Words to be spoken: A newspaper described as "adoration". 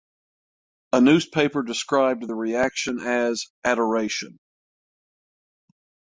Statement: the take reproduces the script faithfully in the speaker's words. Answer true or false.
false